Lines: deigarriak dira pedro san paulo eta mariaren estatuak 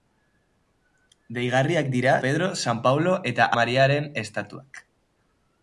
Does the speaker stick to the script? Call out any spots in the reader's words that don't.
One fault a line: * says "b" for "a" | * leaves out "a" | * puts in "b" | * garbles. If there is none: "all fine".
all fine